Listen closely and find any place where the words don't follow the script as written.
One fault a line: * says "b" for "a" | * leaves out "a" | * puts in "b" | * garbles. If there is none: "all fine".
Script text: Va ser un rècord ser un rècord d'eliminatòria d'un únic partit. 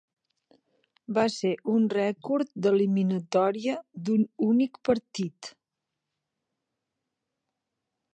* leaves out "ser un rècord"